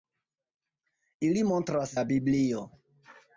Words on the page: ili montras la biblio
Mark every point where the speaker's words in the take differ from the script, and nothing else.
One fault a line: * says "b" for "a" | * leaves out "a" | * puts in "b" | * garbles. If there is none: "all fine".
all fine